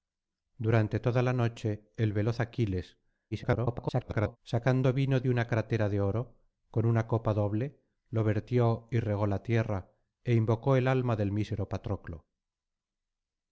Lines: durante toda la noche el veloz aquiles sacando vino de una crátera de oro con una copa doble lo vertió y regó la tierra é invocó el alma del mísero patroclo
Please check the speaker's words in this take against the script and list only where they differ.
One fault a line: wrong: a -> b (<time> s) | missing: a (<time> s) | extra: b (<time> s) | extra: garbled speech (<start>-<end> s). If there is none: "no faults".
extra: garbled speech (3.3-4.4 s)